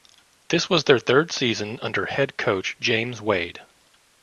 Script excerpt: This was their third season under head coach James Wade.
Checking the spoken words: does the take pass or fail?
pass